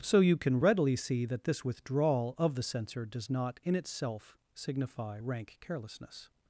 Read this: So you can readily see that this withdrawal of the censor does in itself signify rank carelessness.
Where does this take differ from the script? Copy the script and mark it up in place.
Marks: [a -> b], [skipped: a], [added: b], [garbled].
So you can readily see that this withdrawal of the censor does [added: not] in itself signify rank carelessness.